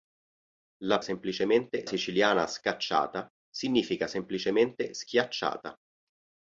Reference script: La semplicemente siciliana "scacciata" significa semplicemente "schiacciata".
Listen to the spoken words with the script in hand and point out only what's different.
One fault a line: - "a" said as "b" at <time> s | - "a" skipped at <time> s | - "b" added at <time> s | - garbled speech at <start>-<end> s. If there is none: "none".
none